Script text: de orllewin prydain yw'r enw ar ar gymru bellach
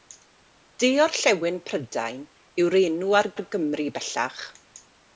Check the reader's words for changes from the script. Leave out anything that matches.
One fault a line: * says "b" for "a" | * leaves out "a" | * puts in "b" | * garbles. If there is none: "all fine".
all fine